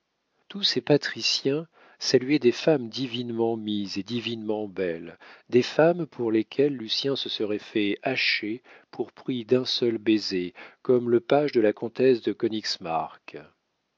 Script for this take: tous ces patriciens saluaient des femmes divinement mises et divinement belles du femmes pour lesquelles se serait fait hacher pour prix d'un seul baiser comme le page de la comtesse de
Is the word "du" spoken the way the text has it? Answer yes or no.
no